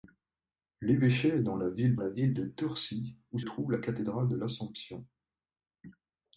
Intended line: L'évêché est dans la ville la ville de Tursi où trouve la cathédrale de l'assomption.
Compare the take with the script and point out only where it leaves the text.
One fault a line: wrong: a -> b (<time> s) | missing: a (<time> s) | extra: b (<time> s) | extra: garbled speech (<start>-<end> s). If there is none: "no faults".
no faults